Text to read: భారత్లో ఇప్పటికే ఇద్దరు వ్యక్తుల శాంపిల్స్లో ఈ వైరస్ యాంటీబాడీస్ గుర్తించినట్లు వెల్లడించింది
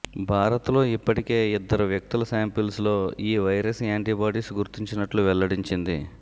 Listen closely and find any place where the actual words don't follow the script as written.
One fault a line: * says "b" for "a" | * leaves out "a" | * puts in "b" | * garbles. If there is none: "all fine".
all fine